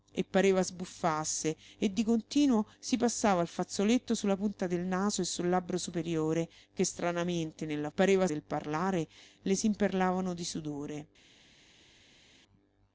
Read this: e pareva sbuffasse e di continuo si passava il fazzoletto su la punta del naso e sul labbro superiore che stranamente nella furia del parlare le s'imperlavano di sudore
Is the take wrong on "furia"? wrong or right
wrong